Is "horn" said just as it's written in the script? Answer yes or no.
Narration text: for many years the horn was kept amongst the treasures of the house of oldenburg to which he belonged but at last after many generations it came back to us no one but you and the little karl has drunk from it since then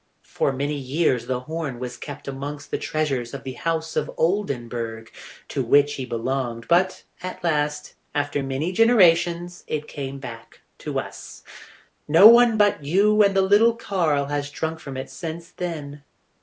yes